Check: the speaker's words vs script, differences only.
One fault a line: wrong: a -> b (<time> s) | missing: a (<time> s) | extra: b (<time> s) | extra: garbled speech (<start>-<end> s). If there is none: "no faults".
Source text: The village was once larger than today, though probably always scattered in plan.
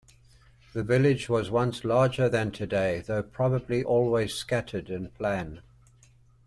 no faults